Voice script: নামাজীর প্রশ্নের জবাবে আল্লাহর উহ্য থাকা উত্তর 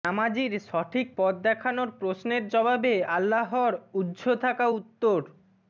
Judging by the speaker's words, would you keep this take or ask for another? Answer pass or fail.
fail